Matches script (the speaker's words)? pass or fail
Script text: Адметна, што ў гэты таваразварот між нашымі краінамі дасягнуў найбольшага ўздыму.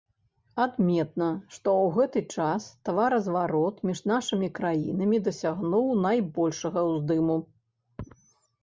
fail